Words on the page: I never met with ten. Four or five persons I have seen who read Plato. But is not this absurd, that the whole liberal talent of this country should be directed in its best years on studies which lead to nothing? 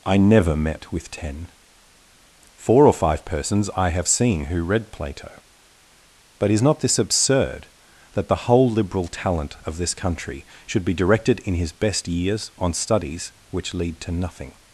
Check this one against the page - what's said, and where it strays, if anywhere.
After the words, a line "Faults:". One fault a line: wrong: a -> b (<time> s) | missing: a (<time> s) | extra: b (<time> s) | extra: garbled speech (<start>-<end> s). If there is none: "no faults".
I never met with ten. Four or five persons I have seen who read Plato. But is not this absurd, that the whole liberal talent of this country should be directed in his best years on studies which lead to nothing?
Faults:
wrong: its -> his (11.6 s)